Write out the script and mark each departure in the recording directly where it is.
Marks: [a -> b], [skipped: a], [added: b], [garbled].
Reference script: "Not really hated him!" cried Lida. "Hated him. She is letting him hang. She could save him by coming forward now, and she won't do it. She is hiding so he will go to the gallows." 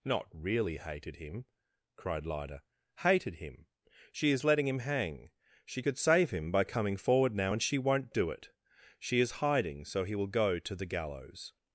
"Not really hated him!" cried Lida. "Hated him. She is letting him hang. She could save him by coming forward now, and she won't do it. She is hiding so he will go to the gallows."